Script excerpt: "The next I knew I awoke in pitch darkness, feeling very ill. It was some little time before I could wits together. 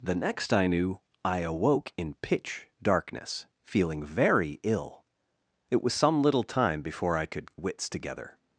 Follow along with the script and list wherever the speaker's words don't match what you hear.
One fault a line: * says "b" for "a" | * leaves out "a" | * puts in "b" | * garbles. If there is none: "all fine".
all fine